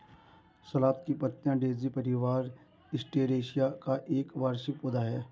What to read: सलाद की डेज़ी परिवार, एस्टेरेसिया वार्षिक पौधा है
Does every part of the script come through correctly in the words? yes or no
no